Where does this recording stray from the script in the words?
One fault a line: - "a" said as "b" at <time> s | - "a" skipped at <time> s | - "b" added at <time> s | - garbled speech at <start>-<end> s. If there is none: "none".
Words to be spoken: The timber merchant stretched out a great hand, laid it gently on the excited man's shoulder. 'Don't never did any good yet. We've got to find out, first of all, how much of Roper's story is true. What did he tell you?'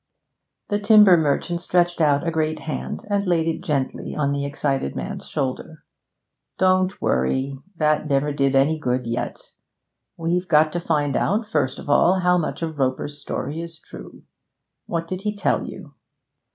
- "and" added at 3.1 s
- "worry that" added at 7.0 s